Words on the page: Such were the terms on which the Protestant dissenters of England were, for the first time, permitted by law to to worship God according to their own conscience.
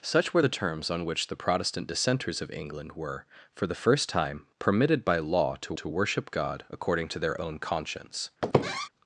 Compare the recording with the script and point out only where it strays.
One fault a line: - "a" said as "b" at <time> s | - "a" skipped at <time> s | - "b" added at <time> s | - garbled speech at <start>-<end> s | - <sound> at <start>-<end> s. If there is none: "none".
- squeak at 8.4-8.9 s